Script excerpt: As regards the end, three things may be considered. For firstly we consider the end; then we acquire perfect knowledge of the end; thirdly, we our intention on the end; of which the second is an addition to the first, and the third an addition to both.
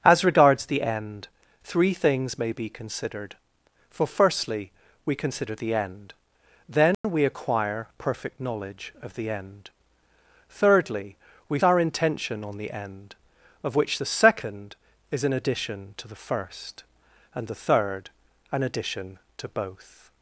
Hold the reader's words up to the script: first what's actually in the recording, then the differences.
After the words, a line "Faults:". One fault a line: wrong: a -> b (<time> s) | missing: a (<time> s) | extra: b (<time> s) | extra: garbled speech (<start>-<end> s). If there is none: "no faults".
As regards the end, three things may be considered. For firstly we consider the end; then we acquire perfect knowledge of the end; thirdly, we our intention on the end; of which the second is an addition to the first, and the third an addition to both.
Faults:
no faults